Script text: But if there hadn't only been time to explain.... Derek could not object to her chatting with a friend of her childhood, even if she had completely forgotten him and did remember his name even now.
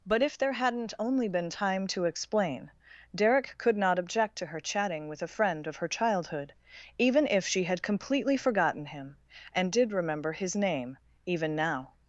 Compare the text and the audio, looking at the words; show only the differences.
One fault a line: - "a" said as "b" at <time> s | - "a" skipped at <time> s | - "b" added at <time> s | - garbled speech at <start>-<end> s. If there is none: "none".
none